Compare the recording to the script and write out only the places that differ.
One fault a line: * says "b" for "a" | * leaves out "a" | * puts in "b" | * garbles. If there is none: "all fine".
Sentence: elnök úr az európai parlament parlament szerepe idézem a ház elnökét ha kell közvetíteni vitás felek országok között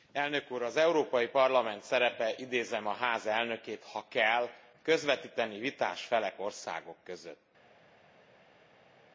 * leaves out "parlament"